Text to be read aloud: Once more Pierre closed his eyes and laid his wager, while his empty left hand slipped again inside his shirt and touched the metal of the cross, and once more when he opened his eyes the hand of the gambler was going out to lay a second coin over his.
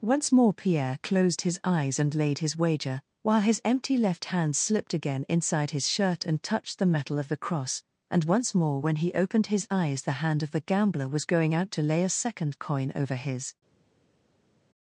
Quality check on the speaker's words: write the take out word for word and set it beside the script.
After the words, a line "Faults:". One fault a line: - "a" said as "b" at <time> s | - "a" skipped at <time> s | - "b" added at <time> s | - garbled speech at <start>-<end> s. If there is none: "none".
Once more Pierre closed his eyes and laid his wager, while his empty left hand slipped again inside his shirt and touched the metal of the cross, and once more when he opened his eyes the hand of the gambler was going out to lay a second coin over his.
Faults:
none